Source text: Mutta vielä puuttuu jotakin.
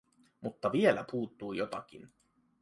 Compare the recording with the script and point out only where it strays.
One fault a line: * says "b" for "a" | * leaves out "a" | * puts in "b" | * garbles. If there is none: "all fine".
all fine